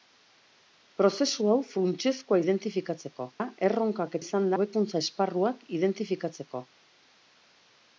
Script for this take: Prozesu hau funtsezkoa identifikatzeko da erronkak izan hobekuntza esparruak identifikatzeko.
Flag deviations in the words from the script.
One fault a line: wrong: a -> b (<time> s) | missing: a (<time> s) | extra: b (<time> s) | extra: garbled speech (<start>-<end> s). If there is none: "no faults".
no faults